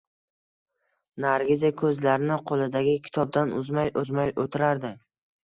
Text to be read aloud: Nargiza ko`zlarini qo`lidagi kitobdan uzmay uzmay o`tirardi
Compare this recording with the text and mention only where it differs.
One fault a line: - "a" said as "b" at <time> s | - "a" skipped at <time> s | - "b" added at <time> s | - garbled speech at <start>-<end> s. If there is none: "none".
none